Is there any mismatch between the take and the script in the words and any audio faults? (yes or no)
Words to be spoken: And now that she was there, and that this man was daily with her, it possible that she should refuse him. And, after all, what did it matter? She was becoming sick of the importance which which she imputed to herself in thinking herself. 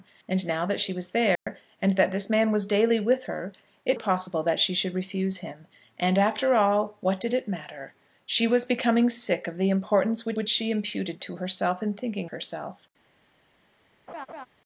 yes